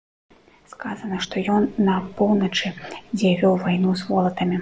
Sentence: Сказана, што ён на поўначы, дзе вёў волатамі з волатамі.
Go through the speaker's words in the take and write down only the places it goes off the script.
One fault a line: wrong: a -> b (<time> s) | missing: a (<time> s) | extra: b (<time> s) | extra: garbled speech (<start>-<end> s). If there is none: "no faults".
wrong: волатамі -> вайну (3.7 s)